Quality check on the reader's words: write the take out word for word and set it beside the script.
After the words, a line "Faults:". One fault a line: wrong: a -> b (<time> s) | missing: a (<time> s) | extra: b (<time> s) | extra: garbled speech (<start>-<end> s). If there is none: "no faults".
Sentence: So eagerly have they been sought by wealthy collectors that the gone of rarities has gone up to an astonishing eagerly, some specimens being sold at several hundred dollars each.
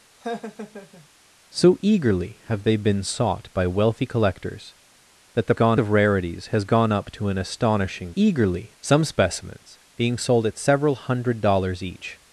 So eagerly have they been sought by wealthy collectors that the gone of rarities has gone up to an astonishing eagerly, some specimens being sold at several hundred dollars each.
Faults:
no faults